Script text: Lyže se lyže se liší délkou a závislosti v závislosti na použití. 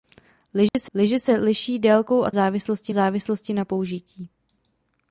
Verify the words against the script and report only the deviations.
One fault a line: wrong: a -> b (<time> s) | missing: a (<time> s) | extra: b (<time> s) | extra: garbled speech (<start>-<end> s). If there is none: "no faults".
no faults